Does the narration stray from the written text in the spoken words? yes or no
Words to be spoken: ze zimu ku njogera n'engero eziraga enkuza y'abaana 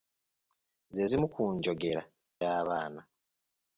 yes